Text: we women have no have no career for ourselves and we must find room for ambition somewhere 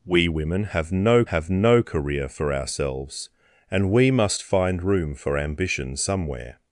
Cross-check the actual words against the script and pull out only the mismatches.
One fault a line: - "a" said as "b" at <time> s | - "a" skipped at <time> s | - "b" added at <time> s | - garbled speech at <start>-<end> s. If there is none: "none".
none